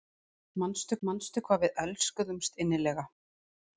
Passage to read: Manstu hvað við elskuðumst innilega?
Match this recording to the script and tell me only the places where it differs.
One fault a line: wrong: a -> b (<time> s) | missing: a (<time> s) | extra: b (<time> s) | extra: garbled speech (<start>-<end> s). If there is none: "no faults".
extra: manstu (1.1 s)